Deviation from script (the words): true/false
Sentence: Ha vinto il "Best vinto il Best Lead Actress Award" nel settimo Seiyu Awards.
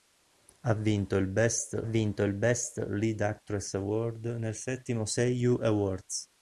false